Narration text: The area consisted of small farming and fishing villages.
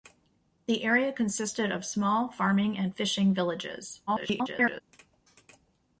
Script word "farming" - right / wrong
right